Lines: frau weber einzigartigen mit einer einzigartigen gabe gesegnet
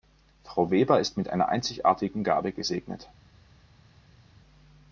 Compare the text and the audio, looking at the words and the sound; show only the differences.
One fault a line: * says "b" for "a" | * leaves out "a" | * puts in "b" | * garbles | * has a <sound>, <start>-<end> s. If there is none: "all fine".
* says "ist" for "einzigartigen"